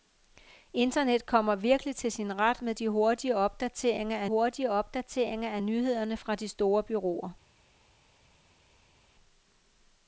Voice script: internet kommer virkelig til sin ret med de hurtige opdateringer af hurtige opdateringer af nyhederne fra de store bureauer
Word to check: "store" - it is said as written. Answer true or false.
true